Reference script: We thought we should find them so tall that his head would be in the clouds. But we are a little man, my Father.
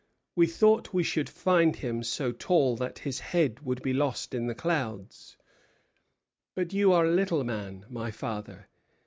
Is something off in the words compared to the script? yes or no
yes